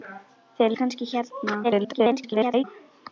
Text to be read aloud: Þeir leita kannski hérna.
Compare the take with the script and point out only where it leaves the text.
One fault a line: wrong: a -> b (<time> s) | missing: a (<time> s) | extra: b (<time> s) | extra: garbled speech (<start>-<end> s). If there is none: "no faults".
missing: leita (0.8 s)
extra: garbled speech (1.6-2.6 s)